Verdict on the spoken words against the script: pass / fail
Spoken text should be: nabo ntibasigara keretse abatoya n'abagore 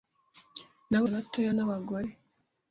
fail